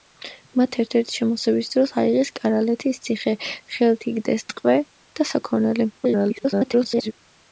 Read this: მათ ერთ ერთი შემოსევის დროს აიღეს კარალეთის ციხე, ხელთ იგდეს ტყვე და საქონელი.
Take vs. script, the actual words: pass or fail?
fail